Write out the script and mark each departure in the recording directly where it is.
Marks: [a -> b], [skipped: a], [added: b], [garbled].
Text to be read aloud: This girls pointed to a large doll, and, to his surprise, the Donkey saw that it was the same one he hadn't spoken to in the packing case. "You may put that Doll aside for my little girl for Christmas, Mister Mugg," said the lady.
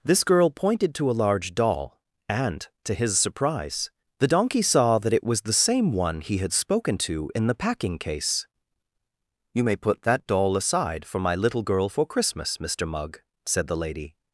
This [girls -> girl] pointed to a large doll, and, to his surprise, the Donkey saw that it was the same one he [hadn't -> had] spoken to in the packing case. "You may put that Doll aside for my little girl for Christmas, Mister Mugg," said the lady.